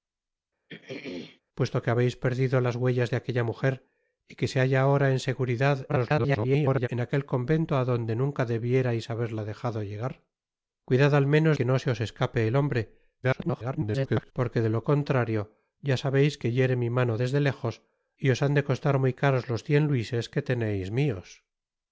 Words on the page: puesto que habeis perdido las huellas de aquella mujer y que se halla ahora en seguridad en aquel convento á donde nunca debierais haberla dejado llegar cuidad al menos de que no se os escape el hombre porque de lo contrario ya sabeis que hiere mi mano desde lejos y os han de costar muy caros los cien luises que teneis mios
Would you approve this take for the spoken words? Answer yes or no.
no